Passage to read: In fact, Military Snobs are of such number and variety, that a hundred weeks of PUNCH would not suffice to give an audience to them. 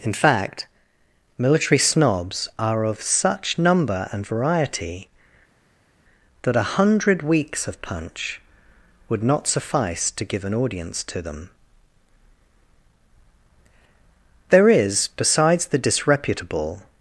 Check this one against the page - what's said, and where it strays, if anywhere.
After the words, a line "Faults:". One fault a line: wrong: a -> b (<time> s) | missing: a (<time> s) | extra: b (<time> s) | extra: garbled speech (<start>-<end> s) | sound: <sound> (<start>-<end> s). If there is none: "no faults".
In fact, Military Snobs are of such number and variety, that a hundred weeks of PUNCH would not suffice to give an audience to them. There is, besides the disreputable
Faults:
extra: There is besides the disreputable (14.5 s)